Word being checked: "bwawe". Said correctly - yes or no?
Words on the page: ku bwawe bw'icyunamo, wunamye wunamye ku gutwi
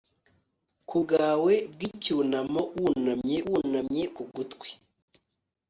yes